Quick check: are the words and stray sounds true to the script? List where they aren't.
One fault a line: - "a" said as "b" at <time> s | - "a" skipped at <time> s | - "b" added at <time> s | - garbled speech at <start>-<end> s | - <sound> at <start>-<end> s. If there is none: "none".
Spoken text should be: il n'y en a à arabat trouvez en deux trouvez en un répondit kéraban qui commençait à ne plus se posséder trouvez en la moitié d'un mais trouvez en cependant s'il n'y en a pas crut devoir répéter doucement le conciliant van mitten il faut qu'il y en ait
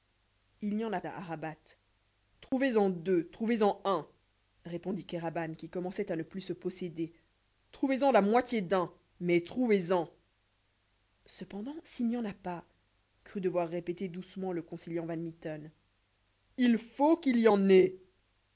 - dropout at 2.5-2.5 s